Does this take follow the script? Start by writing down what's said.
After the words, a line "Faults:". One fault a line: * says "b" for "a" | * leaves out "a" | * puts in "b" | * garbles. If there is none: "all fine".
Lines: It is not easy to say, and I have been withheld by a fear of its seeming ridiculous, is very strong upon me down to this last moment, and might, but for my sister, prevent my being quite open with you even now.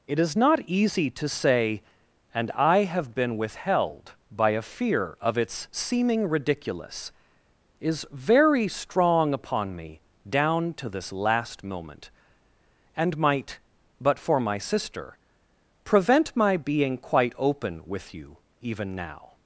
It is not easy to say, and I have been withheld by a fear of its seeming ridiculous, is very strong upon me down to this last moment, and might, but for my sister, prevent my being quite open with you even now.
Faults:
all fine